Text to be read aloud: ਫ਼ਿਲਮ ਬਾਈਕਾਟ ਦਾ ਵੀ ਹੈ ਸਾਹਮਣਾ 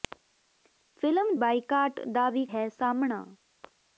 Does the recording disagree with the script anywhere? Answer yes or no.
no